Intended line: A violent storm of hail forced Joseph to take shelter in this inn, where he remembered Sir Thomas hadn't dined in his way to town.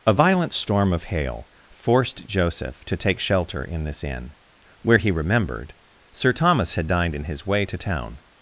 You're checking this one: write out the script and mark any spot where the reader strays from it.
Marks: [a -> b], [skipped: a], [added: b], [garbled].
A violent storm of hail forced Joseph to take shelter in this inn, where he remembered Sir Thomas [hadn't -> had] dined in his way to town.